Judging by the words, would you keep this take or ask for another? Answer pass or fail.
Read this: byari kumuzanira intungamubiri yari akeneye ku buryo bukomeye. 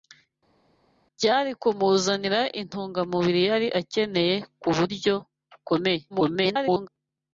fail